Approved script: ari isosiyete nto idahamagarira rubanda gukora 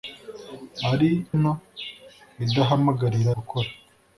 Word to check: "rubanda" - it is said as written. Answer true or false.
false